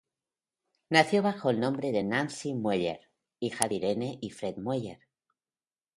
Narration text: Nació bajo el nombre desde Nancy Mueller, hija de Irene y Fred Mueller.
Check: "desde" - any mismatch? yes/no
yes